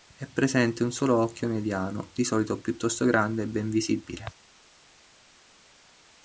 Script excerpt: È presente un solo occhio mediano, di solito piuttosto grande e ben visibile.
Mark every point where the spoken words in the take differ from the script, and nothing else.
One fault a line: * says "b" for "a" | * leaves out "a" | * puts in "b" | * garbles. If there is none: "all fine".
all fine